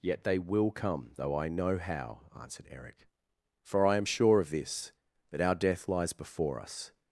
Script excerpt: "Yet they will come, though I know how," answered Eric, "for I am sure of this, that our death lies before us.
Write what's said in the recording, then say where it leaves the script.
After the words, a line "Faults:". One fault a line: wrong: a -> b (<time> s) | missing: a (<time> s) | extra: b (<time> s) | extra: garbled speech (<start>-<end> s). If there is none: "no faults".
"Yet they will come, though I know how," answered Eric, "for I am sure of this, that our death lies before us.
Faults:
no faults